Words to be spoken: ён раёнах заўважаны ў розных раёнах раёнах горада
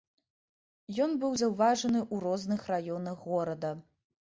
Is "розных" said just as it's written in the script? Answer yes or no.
yes